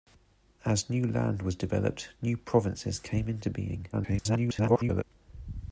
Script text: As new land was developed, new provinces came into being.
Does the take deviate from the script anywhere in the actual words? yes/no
yes